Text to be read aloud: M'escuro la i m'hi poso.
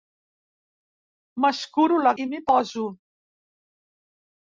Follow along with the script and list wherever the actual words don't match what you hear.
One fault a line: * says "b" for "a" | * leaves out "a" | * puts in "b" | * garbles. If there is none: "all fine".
all fine